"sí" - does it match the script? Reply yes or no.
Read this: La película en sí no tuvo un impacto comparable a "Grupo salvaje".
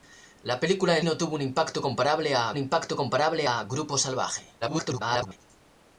no